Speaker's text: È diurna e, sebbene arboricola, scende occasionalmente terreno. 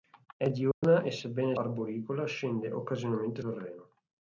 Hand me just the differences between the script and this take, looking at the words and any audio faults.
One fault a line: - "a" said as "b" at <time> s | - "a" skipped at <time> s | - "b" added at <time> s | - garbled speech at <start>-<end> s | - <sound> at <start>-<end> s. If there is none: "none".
- dropout at 0.7-0.8 s